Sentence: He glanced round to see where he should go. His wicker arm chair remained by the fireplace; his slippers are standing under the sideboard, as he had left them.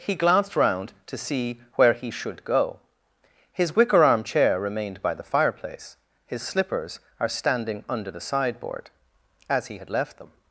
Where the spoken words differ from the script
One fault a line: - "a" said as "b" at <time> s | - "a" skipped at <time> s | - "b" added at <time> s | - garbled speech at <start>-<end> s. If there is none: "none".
none